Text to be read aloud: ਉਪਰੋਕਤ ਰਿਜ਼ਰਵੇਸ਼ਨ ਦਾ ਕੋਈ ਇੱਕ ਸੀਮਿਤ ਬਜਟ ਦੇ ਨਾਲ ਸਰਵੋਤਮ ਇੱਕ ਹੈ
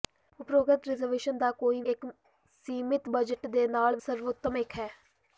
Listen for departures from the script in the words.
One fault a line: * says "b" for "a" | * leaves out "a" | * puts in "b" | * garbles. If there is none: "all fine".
all fine